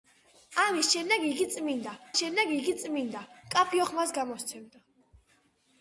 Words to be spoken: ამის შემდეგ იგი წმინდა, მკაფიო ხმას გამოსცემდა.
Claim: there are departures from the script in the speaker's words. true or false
true